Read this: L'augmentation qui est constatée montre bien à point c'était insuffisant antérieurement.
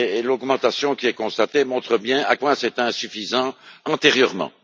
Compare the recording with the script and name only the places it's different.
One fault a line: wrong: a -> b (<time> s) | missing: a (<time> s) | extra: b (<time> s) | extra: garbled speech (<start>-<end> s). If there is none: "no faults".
no faults